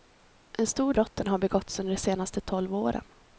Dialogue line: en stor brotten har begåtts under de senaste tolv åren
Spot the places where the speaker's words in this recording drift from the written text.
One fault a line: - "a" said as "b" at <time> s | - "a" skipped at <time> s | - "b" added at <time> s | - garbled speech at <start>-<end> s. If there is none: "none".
none